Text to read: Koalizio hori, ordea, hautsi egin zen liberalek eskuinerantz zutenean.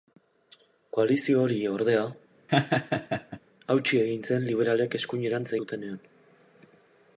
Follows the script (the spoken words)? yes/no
yes